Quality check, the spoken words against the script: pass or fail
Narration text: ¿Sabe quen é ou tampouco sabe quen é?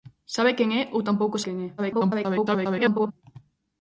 fail